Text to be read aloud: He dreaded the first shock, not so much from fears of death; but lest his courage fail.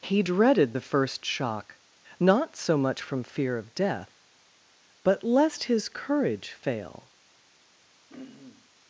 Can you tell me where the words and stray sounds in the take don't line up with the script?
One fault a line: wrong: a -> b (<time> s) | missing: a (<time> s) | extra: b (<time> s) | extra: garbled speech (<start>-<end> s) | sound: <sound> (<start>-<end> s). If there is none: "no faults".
wrong: fears -> fear (3.2 s)
sound: throat clearing (8.1-8.7 s)